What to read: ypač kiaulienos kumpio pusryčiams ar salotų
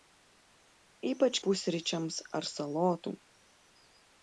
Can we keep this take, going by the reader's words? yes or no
no